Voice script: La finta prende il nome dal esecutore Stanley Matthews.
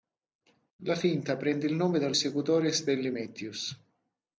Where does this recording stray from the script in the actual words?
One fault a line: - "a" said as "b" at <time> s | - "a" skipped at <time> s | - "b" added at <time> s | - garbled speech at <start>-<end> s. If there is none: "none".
none